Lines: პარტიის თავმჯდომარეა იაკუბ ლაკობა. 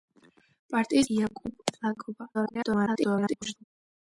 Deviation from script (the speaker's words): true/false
true